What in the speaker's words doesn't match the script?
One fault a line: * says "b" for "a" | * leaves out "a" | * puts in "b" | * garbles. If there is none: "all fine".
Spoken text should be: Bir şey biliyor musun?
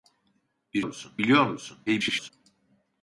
* says "musun" for "şey"
* garbles